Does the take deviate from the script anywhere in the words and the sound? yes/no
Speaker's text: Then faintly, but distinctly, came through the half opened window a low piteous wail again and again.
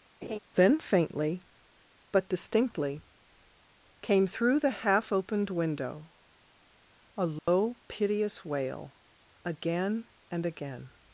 yes